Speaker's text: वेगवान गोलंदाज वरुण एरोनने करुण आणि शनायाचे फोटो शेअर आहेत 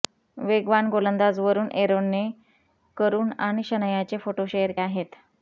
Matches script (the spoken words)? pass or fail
pass